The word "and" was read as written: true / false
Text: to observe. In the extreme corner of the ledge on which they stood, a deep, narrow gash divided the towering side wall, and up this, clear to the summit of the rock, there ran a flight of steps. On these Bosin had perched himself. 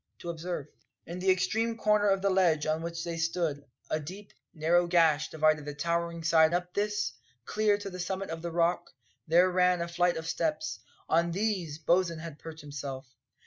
false